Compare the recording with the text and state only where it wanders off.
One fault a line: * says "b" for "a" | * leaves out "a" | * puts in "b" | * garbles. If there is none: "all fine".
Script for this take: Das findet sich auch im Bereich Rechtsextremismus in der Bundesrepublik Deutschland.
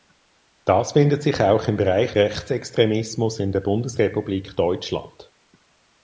all fine